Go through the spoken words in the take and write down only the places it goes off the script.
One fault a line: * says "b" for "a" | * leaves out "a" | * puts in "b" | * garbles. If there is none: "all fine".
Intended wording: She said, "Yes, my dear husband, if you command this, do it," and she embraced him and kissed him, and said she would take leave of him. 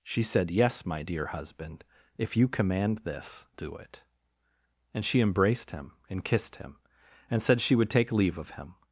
all fine